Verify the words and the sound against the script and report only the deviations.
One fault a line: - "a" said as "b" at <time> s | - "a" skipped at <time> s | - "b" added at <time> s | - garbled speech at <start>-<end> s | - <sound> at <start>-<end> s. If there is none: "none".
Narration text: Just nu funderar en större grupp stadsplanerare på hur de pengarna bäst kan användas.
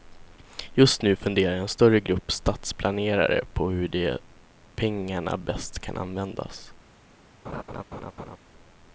- laugh at 7.4-8.4 s